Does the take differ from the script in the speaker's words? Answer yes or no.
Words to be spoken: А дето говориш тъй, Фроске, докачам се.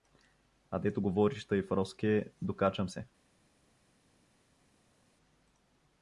no